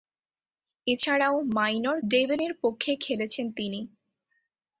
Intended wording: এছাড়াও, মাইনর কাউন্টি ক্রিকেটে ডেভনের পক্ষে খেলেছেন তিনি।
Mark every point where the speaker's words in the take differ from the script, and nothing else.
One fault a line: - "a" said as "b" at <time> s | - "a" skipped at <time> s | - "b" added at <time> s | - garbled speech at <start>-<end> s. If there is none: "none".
- "কাউন্টি ক্রিকেটে" skipped at 2.0 s